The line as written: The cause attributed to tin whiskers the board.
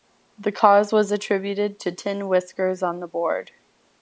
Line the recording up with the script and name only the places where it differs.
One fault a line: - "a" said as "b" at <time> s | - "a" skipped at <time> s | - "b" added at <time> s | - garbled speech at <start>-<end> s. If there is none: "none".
- "was" added at 0.9 s
- "on" added at 2.8 s